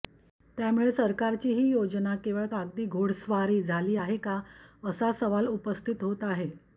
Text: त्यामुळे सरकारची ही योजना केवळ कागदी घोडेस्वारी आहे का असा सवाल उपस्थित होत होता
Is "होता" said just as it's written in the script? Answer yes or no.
no